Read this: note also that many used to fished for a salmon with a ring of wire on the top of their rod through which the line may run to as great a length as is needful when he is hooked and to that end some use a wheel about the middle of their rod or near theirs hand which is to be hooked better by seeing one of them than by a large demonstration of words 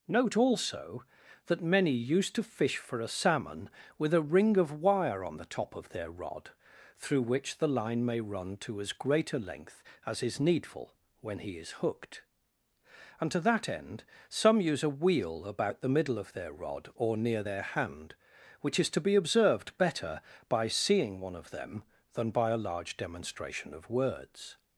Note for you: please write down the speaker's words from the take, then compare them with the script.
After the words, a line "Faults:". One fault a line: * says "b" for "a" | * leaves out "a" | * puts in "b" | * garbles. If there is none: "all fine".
note also that many used to fish for a salmon with a ring of wire on the top of their rod through which the line may run to as great a length as is needful when he is hooked and to that end some use a wheel about the middle of their rod or near their hand which is to be observed better by seeing one of them than by a large demonstration of words
Faults:
* says "fish" for "fished"
* says "their" for "theirs"
* says "observed" for "hooked"